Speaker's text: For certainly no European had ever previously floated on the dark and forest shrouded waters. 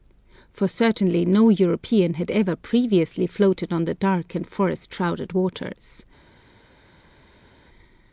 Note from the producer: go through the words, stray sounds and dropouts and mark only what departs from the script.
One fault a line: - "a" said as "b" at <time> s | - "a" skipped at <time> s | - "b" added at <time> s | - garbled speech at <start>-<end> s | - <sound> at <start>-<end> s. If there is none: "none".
none